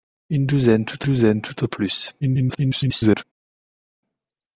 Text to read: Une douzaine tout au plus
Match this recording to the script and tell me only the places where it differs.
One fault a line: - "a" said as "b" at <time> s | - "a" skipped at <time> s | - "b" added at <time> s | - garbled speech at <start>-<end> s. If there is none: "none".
- "douzaine tout" added at 1.0 s
- garbled speech at 2.2-3.2 s